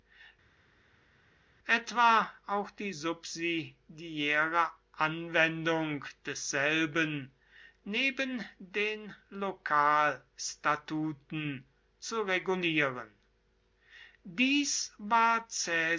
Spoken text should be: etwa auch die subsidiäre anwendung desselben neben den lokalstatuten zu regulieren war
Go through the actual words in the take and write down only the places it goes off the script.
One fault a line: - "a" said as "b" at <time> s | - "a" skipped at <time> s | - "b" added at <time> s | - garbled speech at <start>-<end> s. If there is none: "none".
- "dies" added at 14.2 s